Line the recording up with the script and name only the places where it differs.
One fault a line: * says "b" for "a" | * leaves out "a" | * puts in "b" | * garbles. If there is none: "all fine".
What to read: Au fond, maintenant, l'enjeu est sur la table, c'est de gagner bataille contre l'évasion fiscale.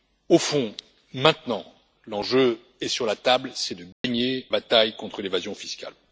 all fine